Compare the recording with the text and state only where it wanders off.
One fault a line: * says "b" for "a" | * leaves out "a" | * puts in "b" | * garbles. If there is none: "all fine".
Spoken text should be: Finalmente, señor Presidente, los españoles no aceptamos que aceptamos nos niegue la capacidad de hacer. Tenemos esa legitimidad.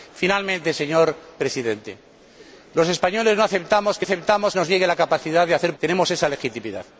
all fine